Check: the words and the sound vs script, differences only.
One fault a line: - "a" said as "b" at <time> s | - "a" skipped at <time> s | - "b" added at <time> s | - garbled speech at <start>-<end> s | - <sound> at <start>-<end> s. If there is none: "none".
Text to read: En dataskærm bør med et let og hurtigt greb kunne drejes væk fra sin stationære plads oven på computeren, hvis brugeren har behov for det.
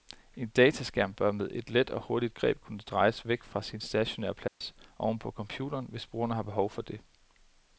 - dropout at 4.5-4.6 s